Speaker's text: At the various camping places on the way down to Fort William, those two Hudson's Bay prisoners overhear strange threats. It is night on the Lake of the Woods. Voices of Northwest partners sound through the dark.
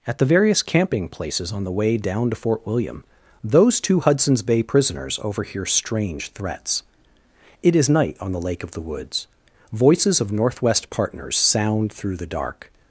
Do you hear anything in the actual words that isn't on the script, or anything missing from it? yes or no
no